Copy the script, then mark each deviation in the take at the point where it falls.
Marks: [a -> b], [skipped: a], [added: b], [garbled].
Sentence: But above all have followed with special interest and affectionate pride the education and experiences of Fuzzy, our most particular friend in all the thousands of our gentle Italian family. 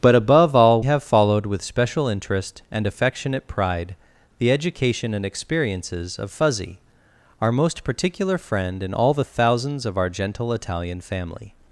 But above all have followed with special interest and affectionate pride the education and experiences of Fuzzy, our most particular friend in all the thousands of our gentle Italian family.